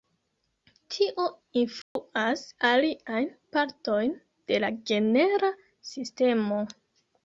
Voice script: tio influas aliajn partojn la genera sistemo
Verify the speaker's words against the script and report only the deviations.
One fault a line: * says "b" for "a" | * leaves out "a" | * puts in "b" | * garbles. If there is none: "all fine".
* puts in "de"